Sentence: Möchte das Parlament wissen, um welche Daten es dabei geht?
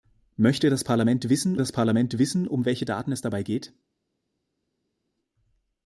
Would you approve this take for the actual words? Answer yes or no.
no